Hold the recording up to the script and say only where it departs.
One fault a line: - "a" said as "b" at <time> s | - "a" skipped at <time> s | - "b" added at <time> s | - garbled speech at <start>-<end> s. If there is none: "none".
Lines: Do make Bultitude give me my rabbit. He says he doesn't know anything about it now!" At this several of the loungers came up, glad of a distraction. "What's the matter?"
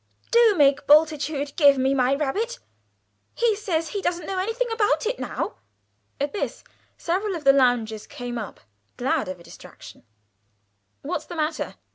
none